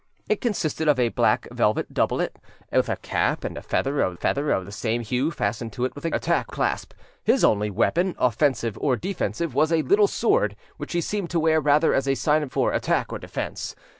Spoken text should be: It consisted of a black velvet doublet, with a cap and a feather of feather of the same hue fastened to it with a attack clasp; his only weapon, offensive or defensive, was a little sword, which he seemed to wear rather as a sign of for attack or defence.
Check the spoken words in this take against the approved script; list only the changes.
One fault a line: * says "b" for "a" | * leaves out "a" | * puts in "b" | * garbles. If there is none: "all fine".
all fine